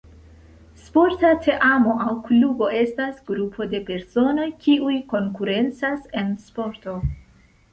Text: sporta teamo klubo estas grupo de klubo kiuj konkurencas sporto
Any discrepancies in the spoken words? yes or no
yes